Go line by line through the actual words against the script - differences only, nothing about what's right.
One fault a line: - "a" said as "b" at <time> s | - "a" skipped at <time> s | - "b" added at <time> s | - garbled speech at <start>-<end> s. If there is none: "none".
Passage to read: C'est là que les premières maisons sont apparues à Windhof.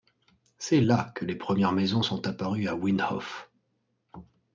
none